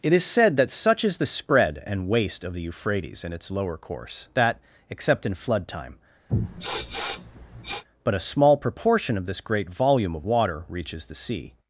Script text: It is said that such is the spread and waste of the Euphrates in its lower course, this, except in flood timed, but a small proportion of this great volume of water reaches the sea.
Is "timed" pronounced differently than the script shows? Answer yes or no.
yes